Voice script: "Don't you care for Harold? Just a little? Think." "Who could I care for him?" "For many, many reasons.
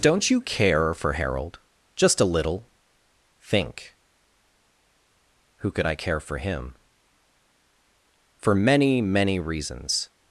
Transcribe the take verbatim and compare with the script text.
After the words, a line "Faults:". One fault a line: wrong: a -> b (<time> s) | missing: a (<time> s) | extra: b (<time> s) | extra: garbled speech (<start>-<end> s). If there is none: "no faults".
"Don't you care for Harold? Just a little? Think." "Who could I care for him?" "For many, many reasons.
Faults:
no faults